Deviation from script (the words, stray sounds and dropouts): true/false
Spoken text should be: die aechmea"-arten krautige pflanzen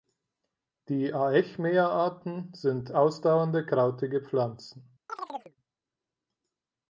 true